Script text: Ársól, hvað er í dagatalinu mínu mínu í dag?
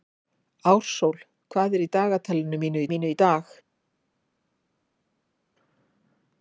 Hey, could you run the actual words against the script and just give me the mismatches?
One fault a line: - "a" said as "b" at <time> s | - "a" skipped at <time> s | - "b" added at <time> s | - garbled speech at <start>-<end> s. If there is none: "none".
none